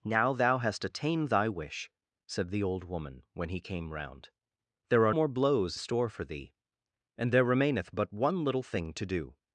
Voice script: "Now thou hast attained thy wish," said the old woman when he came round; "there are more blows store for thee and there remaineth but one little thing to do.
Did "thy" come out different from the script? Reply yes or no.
no